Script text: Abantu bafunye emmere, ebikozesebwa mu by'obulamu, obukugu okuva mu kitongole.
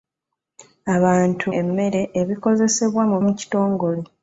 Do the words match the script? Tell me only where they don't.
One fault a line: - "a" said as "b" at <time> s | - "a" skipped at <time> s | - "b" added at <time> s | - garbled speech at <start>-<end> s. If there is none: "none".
- "bafunye" skipped at 1.4 s
- "by'obulamu obukugu okuva" skipped at 3.2 s